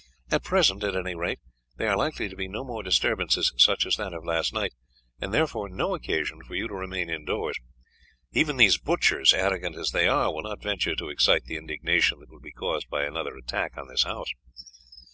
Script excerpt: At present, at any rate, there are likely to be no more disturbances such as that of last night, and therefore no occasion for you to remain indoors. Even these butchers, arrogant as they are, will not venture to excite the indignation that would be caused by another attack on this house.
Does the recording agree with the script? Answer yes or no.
yes